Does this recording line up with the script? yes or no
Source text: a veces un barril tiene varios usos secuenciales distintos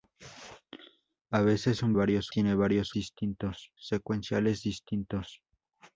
no